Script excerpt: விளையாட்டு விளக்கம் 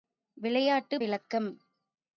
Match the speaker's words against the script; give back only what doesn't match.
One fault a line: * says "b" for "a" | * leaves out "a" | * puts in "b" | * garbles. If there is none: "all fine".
all fine